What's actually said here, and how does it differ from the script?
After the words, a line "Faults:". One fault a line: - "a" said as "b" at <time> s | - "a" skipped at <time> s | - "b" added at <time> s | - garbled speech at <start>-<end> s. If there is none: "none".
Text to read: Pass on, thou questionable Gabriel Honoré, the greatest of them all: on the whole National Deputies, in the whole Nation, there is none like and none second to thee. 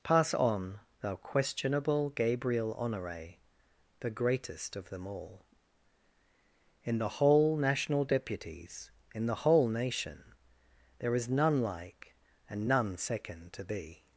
Pass on, thou questionable Gabriel Honoré, the greatest of them all: in the whole National Deputies, in the whole Nation, there is none like and none second to thee.
Faults:
- "on" said as "in" at 6.8 s